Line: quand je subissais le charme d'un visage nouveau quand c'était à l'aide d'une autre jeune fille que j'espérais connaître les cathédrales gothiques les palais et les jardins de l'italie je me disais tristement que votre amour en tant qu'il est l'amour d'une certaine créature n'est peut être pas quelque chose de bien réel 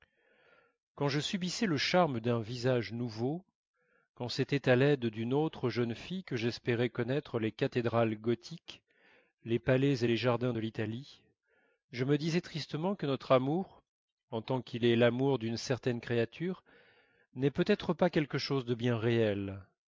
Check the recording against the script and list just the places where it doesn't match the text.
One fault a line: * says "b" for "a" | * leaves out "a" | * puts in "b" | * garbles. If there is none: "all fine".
* says "notre" for "votre"